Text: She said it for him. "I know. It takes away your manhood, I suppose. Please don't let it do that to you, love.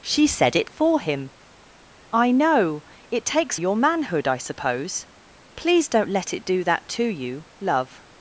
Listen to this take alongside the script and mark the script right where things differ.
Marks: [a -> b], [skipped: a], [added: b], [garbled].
She said it for him. "I know. It takes [skipped: away] your manhood, I suppose. Please don't let it do that to you, love.